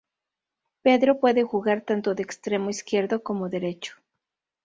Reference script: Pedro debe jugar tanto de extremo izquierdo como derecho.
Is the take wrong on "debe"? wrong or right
wrong